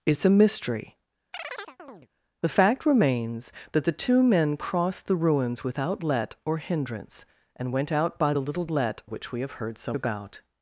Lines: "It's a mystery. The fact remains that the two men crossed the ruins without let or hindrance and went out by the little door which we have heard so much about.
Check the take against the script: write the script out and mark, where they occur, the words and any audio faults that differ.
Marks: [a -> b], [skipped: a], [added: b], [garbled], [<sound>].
"It's a mystery. [chirp] The fact remains that the two men crossed the ruins without let or hindrance and went out by the little [door -> let] which we have heard so [skipped: much] about.